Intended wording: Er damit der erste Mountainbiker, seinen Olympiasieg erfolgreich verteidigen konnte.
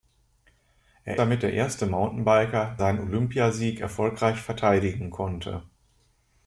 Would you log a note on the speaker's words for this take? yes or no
no